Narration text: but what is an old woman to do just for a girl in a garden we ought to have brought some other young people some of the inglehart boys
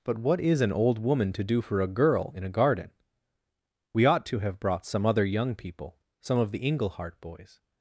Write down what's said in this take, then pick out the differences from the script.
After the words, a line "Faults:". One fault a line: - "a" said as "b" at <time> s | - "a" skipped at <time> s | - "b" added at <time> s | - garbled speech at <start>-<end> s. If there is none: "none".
but what is an old woman to do for a girl in a garden we ought to have brought some other young people some of the inglehart boys
Faults:
- "just" skipped at 1.6 s